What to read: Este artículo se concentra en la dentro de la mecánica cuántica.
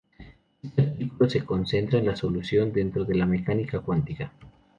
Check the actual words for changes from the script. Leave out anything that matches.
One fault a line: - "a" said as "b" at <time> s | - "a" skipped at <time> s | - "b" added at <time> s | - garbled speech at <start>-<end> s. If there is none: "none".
- "solución" added at 2.1 s